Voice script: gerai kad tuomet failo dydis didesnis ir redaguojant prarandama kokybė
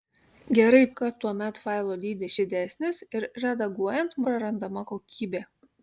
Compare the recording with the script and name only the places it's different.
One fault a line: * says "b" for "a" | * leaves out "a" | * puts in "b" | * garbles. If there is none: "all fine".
all fine